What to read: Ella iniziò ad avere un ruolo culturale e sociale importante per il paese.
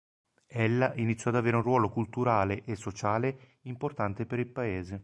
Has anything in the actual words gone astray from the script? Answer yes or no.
no